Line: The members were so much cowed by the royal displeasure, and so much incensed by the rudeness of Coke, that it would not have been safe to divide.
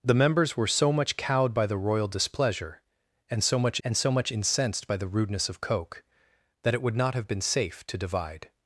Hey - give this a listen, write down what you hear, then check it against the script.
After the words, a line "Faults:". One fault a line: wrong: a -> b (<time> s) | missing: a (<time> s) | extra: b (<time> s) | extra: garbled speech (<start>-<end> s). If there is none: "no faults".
The members were so much cowed by the royal displeasure, and so much and so much incensed by the rudeness of Coke, that it would not have been safe to divide.
Faults:
extra: and so much (3.8 s)